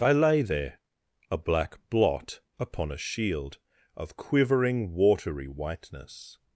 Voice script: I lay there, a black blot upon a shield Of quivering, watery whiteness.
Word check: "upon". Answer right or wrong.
right